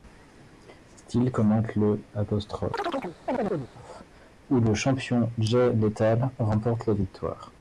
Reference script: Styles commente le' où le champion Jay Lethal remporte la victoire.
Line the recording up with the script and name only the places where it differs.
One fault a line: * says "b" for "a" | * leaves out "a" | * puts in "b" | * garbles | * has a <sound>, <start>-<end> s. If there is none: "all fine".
* has a chirp, 2.7-3.7 s